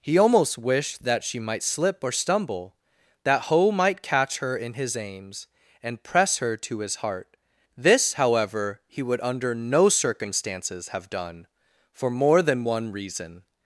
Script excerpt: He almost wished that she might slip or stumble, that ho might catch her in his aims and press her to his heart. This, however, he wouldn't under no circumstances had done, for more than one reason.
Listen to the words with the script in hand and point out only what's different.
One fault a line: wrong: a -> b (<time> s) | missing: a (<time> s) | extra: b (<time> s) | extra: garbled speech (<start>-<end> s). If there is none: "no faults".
wrong: wouldn't -> would (9.0 s)
wrong: had -> have (10.9 s)